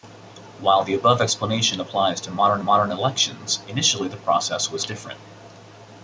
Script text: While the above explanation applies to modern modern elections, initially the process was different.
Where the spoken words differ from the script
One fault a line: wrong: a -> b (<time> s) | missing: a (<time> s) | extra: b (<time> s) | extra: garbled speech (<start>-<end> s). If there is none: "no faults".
no faults